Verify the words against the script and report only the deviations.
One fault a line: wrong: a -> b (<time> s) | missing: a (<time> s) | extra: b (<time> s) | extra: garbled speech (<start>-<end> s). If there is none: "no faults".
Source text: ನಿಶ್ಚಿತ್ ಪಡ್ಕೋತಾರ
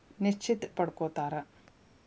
no faults